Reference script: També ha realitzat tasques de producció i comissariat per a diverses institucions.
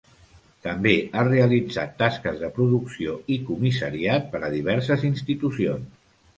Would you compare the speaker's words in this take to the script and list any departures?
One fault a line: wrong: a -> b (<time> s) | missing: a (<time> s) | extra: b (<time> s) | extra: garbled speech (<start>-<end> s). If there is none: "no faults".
no faults